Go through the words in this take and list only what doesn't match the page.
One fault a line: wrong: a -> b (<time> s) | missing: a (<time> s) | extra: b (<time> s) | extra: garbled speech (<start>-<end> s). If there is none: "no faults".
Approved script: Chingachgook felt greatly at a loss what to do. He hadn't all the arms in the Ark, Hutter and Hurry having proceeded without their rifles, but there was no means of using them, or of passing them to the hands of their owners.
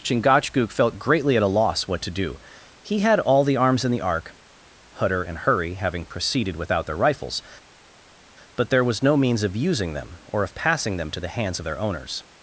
wrong: hadn't -> had (3.0 s)